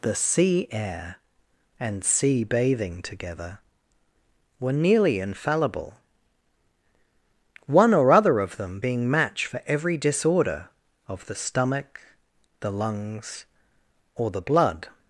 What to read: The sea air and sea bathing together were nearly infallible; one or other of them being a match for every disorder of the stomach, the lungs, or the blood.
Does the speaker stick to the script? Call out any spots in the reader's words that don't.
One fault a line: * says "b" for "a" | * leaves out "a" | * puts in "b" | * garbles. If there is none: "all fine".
* leaves out "a"